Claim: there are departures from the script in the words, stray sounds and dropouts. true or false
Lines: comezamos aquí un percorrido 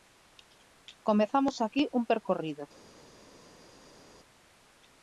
false